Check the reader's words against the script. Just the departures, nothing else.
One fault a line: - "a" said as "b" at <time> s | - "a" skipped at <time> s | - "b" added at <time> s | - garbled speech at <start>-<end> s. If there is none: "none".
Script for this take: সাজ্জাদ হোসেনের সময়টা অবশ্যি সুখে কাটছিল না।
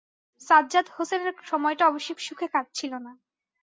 none